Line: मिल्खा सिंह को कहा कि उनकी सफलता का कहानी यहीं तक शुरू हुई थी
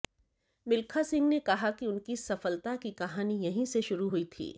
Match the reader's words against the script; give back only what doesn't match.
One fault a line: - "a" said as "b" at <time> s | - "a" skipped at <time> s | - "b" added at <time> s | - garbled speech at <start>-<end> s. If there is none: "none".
- "को" said as "ने" at 1.3 s
- "का" said as "की" at 2.8 s
- "तक" said as "से" at 3.6 s